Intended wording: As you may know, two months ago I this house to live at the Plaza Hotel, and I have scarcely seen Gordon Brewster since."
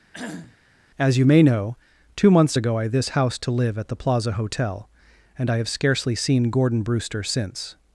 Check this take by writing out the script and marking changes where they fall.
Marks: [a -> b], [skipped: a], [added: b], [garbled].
As you may know, two months ago I this house to live at the Plaza Hotel, and I have scarcely seen Gordon Brewster since."